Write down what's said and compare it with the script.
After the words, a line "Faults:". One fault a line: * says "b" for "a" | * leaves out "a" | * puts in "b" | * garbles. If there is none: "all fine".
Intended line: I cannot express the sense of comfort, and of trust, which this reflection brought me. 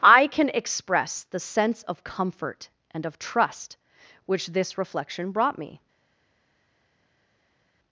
I can express the sense of comfort, and of trust, which this reflection brought me.
Faults:
* says "can" for "cannot"